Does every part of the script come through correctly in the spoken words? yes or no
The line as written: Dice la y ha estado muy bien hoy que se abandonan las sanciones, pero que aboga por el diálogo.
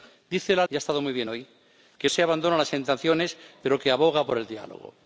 yes